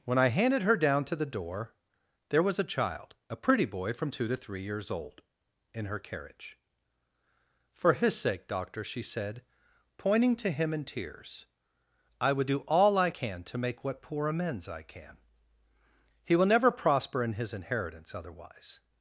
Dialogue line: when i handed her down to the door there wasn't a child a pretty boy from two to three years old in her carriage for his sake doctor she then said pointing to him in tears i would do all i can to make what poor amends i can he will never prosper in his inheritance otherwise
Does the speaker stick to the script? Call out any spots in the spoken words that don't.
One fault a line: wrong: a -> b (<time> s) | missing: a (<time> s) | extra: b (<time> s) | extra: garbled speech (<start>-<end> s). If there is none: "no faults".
wrong: wasn't -> was (2.4 s)
missing: then (9.0 s)